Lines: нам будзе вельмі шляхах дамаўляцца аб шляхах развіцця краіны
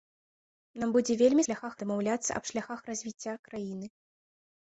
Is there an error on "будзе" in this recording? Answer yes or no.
no